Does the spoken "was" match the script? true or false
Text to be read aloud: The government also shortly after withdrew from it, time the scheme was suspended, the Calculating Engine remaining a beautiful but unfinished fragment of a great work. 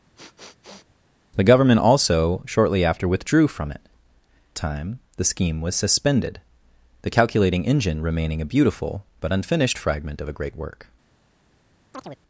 true